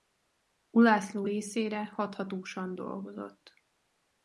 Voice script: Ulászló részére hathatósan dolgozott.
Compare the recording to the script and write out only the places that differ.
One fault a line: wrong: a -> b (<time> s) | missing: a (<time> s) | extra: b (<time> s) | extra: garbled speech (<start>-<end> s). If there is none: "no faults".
no faults